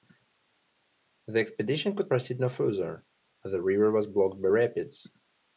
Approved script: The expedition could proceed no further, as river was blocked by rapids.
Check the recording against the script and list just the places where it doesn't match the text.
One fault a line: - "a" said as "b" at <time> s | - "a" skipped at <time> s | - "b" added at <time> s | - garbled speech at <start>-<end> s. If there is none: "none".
- "the" added at 3.5 s